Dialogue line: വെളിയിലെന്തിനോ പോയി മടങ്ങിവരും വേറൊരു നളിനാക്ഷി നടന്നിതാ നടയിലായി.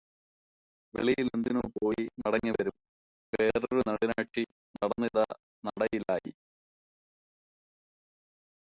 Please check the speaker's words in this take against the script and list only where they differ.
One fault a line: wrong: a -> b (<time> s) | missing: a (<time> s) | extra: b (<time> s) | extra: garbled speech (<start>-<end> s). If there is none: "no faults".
no faults